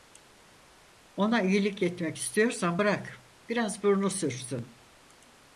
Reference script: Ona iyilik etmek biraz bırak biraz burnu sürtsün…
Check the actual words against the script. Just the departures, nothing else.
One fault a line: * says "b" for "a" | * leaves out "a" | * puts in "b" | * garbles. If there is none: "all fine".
* says "istiyorsan" for "biraz"